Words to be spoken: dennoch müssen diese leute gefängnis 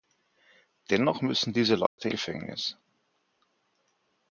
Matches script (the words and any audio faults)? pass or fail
fail